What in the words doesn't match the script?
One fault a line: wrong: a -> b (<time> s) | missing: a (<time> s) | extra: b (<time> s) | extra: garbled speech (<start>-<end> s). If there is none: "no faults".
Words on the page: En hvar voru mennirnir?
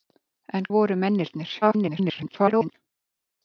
missing: hvar (0.7 s)
extra: garbled speech (1.6-2.7 s)